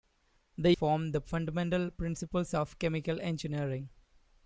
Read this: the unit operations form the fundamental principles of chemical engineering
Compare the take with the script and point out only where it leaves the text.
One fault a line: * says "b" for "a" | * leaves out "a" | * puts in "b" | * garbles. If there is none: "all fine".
* leaves out "unit operations"